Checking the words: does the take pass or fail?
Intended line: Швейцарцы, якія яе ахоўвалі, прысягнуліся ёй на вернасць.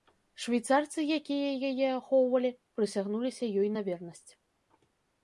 pass